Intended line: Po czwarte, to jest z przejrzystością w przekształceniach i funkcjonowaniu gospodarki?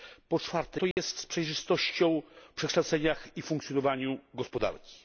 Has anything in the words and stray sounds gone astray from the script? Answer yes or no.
yes